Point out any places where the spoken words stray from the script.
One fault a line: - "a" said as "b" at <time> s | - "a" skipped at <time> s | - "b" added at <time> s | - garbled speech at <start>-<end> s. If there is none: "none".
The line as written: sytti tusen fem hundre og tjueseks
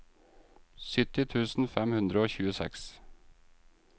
none